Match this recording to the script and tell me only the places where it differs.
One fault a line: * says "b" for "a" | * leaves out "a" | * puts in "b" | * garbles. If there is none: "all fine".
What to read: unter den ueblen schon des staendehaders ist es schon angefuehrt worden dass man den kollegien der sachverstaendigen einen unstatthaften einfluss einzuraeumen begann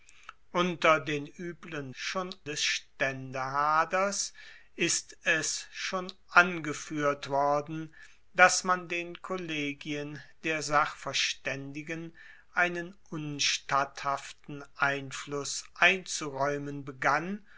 all fine